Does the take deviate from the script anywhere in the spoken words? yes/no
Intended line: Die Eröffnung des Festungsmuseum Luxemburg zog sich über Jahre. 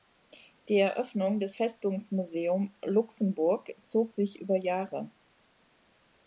no